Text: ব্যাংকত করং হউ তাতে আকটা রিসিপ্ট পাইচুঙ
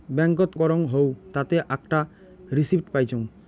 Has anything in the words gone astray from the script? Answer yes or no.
no